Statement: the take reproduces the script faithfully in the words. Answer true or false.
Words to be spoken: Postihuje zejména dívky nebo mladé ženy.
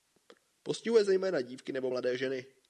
true